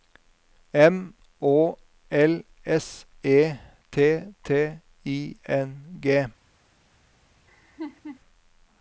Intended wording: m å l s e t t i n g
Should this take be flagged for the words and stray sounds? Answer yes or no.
yes